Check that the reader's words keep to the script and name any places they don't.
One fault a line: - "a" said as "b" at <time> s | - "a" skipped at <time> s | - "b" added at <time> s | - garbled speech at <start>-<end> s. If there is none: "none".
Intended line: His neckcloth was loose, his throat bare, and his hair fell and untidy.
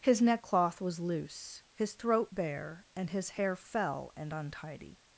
none